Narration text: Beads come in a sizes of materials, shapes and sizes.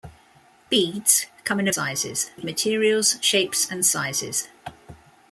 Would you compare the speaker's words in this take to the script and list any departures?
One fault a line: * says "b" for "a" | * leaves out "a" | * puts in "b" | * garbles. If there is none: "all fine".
all fine